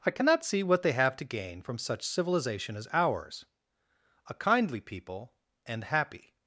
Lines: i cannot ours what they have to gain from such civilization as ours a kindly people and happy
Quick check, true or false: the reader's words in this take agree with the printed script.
false